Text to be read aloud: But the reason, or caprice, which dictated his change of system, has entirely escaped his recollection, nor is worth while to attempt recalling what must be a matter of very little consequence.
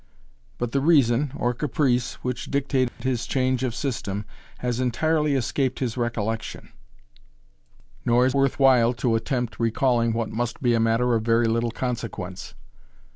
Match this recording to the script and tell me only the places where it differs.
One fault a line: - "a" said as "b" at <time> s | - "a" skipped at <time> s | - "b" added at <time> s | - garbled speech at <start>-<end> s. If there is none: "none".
none